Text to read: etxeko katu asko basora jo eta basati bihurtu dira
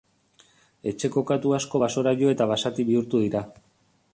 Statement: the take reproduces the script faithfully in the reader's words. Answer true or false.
true